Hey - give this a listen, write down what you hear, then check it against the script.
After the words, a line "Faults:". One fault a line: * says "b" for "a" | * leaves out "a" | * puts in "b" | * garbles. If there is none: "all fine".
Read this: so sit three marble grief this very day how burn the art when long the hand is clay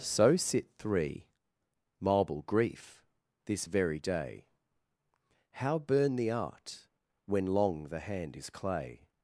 so sit three marble grief this very day how burn the art when long the hand is clay
Faults:
all fine